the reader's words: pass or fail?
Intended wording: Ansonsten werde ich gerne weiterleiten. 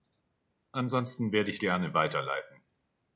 pass